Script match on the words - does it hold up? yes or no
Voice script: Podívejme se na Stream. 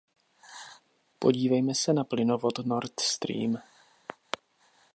no